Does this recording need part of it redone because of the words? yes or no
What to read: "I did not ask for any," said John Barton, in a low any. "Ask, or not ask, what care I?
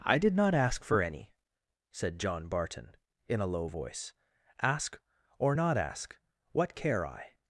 yes